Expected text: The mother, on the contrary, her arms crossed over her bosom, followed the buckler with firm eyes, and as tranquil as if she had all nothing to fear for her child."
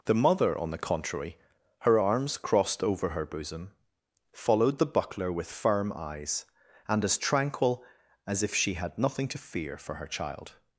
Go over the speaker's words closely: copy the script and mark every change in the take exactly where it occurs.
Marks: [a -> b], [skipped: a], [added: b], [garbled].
The mother, on the contrary, her arms crossed over her bosom, followed the buckler with firm eyes, and as tranquil as if she had [skipped: all] nothing to fear for her child."